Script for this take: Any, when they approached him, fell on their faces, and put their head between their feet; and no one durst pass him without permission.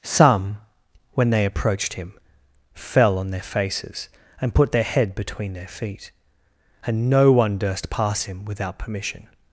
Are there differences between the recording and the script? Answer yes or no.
yes